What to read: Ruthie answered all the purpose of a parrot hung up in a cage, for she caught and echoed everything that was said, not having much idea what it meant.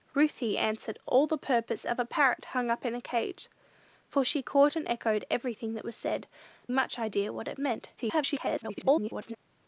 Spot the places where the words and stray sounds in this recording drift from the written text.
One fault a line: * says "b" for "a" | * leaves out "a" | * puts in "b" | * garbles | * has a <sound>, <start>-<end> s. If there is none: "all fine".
* leaves out "not having"
* garbles